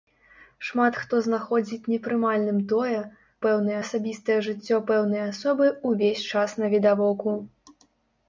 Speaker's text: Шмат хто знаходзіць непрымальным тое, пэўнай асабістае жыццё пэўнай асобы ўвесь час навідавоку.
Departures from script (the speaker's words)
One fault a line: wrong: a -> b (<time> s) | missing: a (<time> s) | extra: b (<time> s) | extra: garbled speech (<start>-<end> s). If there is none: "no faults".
no faults